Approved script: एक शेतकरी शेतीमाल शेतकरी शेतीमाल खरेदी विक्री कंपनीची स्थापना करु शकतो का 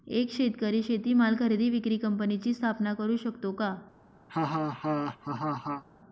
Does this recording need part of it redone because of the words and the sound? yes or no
yes